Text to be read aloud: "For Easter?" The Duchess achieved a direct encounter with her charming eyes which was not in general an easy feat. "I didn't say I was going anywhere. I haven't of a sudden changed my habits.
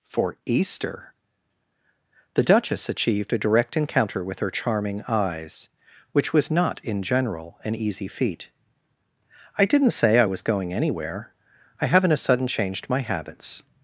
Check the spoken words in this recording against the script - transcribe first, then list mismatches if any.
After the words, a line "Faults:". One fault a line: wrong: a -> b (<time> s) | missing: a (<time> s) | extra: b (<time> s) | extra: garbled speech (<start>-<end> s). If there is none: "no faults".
"For Easter?" The Duchess achieved a direct encounter with her charming eyes which was not in general an easy feat. "I didn't say I was going anywhere. I haven't a sudden changed my habits.
Faults:
missing: of (12.1 s)